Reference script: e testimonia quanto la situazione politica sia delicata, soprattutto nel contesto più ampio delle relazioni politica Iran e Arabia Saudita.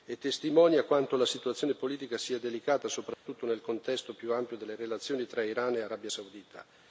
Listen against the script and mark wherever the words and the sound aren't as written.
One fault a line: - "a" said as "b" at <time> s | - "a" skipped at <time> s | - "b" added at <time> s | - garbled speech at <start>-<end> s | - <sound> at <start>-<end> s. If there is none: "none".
- dropout at 3.1-3.3 s
- "politica" said as "tra" at 5.2 s